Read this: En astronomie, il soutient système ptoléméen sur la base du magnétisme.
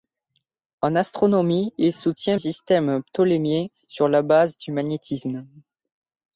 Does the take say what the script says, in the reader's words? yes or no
yes